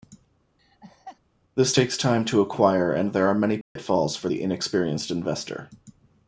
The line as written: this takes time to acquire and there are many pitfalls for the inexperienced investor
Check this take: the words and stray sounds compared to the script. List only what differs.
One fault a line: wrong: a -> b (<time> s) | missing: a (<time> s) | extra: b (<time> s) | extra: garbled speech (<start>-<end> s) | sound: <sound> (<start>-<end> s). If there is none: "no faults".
sound: laugh (0.6-1.2 s)
sound: dropout (3.6-3.8 s)